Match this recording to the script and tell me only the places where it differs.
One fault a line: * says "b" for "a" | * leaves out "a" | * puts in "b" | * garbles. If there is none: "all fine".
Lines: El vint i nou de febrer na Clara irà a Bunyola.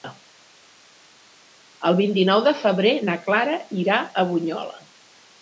all fine